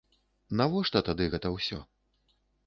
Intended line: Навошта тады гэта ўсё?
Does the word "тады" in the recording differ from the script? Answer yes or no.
no